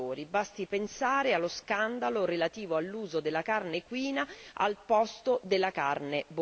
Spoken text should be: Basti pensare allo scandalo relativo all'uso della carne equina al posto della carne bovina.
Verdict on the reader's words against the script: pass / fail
pass